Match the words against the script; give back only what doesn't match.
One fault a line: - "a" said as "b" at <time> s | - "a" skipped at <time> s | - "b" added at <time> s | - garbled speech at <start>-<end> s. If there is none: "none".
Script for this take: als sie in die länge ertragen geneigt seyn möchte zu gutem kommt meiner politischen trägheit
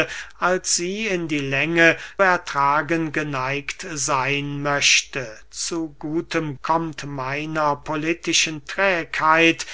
none